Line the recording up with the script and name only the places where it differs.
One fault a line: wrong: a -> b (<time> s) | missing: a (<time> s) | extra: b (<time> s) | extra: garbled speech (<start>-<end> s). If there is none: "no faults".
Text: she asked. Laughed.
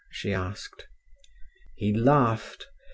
extra: He (1.7 s)